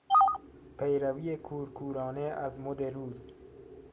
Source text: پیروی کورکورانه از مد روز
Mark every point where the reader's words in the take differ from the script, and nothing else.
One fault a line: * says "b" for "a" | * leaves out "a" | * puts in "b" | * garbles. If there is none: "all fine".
all fine